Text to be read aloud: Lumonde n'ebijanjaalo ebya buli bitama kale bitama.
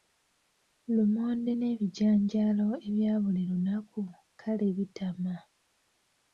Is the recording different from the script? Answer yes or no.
yes